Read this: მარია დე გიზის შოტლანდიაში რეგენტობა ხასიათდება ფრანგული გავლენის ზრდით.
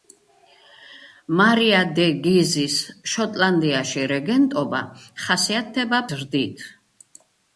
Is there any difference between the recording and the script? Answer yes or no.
yes